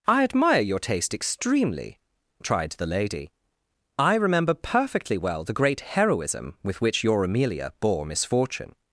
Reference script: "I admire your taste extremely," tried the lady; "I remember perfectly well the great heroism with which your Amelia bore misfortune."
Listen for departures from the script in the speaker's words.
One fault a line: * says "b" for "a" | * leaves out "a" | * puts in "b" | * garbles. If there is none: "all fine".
all fine